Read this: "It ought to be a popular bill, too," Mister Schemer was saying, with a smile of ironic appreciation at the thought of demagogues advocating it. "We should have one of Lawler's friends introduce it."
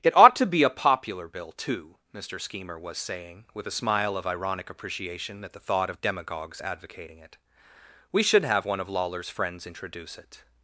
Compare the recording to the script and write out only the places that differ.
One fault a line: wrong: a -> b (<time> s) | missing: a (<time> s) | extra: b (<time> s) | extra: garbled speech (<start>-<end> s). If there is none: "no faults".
no faults